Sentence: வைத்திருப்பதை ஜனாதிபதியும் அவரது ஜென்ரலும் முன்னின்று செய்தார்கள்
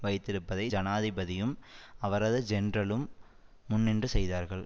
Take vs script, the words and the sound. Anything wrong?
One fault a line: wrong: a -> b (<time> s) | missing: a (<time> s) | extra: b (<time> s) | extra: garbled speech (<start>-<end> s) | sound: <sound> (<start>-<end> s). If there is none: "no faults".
no faults